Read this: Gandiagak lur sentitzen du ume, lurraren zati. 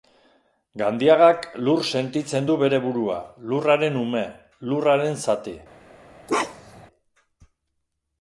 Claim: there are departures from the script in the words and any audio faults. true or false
true